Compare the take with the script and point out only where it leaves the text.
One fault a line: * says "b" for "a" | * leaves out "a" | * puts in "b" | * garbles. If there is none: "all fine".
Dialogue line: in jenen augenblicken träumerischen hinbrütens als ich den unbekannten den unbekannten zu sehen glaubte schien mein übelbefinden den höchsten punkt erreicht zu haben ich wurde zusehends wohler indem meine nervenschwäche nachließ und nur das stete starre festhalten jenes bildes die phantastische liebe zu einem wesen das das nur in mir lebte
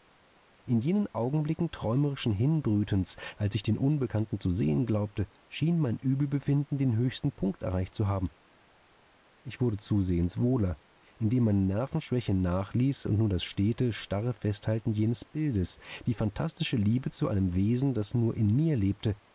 * leaves out "den unbekannten"
* leaves out "das"